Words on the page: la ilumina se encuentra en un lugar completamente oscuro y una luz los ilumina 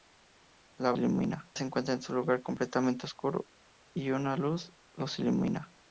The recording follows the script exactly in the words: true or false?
true